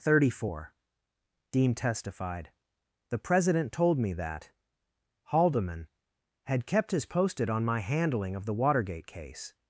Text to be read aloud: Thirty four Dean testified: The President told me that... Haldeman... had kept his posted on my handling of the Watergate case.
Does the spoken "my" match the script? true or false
true